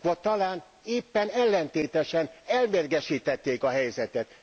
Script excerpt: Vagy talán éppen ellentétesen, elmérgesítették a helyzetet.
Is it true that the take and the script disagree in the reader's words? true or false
false